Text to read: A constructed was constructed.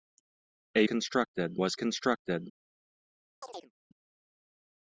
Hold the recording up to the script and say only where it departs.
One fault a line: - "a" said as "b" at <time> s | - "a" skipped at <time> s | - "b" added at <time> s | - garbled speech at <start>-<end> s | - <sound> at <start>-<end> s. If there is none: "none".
- chirp at 3.4-3.7 s